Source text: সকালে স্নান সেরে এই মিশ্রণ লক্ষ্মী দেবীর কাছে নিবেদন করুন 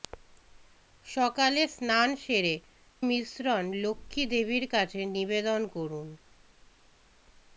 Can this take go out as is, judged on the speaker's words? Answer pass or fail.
fail